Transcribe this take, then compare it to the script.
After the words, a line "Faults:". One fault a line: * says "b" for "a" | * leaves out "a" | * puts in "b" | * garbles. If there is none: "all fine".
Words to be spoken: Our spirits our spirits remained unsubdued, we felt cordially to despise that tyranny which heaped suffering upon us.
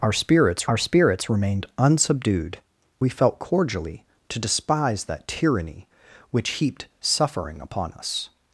Our spirits our spirits remained unsubdued, we felt cordially to despise that tyranny which heaped suffering upon us.
Faults:
all fine